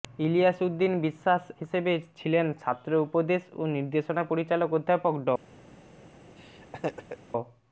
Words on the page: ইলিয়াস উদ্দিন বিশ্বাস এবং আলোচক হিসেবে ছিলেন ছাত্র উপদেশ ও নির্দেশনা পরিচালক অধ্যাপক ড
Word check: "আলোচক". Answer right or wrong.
wrong